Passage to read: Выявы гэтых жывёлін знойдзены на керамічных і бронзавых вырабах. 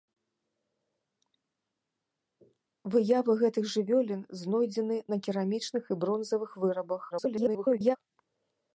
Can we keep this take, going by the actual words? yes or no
no